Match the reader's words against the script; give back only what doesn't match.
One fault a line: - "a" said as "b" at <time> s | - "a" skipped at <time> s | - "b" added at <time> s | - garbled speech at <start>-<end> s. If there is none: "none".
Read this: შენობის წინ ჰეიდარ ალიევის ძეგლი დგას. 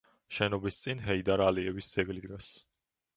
none